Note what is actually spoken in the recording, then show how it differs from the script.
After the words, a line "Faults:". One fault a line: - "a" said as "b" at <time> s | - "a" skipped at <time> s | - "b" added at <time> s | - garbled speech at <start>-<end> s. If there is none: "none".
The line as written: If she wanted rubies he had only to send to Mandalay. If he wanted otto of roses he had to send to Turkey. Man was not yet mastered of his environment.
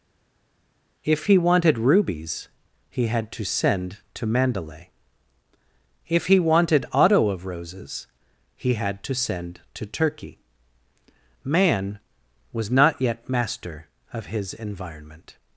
If he wanted rubies he had to send to Mandalay. If he wanted otto of roses he had to send to Turkey. Man was not yet master of his environment.
Faults:
- "she" said as "he" at 1.3 s
- "only" skipped at 3.3 s
- "mastered" said as "master" at 13.3 s